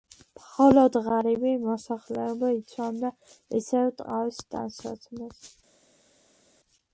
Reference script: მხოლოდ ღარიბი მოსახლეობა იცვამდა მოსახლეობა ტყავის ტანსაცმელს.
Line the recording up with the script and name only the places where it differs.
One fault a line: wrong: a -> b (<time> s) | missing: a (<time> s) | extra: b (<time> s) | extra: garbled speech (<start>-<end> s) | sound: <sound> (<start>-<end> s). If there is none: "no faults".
wrong: მოსახლეობა -> ისევ (3.6 s)